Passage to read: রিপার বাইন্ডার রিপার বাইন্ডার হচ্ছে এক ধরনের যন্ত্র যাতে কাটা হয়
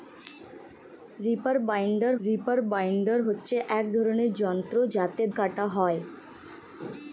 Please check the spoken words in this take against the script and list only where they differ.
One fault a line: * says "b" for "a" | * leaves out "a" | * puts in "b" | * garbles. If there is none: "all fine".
all fine